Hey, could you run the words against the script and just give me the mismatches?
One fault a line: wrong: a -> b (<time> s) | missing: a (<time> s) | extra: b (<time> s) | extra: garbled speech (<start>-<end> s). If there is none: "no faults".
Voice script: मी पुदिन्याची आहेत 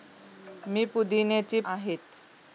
no faults